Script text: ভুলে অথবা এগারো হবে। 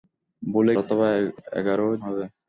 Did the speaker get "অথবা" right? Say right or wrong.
right